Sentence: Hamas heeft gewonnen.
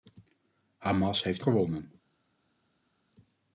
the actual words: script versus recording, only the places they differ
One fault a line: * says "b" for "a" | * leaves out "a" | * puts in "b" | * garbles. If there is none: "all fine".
all fine